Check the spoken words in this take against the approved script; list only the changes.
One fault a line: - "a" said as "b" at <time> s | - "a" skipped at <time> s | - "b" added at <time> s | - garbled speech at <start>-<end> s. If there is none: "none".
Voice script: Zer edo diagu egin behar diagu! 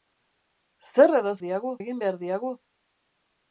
none